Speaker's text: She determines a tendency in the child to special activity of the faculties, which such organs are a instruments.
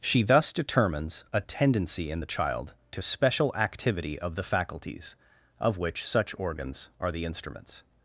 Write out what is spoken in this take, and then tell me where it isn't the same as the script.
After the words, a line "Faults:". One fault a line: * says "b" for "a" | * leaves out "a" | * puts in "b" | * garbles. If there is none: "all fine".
She thus determines a tendency in the child to special activity of the faculties, of which such organs are the instruments.
Faults:
* puts in "thus"
* puts in "of"
* says "the" for "a"